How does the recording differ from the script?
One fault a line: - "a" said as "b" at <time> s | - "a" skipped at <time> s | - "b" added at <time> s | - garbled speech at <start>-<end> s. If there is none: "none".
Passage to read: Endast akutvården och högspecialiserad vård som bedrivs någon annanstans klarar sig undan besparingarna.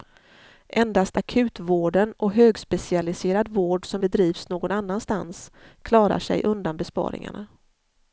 none